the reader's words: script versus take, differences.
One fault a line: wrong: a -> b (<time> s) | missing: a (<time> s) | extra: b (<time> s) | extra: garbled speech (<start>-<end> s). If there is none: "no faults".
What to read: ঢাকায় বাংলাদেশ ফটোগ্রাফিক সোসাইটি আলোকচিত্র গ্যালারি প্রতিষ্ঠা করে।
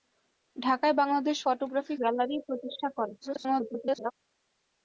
missing: সোসাইটি আলোকচিত্র (2.0 s)
extra: garbled speech (3.2-4.1 s)